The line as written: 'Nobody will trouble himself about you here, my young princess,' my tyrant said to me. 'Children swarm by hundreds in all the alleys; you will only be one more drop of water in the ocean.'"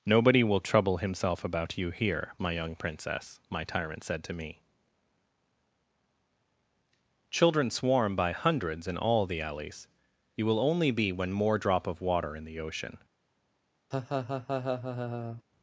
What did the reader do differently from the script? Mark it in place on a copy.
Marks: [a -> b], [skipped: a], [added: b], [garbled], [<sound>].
'Nobody will trouble himself about you here, my young princess,' my tyrant said to me. 'Children swarm by hundreds in all the alleys; you will only be [one -> when] more drop of water in the ocean.'" [laugh]